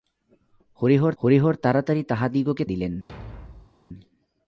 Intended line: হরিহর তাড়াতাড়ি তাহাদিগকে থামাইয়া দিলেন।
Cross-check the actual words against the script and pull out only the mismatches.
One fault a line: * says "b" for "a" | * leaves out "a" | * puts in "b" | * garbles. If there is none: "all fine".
* puts in "হরিহর"
* leaves out "থামাইয়া"